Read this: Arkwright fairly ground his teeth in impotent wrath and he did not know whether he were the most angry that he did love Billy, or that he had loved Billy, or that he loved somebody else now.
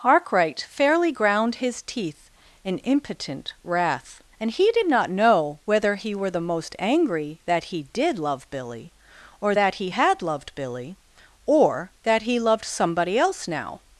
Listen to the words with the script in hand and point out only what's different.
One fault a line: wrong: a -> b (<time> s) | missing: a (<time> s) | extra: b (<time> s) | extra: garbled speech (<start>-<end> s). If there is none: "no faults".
no faults